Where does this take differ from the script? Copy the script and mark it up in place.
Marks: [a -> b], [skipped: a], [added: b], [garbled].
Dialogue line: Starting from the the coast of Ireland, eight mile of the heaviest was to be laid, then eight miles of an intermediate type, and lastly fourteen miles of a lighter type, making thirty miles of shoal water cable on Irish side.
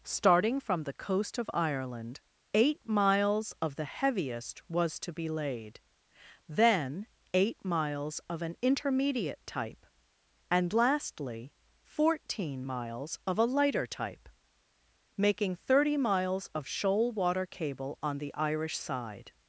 Starting from the [skipped: the] coast of Ireland, eight [mile -> miles] of the heaviest was to be laid, then eight miles of an intermediate type, and lastly fourteen miles of a lighter type, making thirty miles of shoal water cable on [added: the] Irish side.